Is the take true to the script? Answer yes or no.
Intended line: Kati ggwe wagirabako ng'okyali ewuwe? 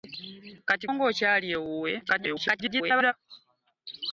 no